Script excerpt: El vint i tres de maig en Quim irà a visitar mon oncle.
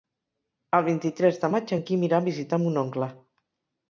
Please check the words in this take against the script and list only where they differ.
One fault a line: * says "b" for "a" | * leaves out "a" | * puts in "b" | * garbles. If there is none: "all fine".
all fine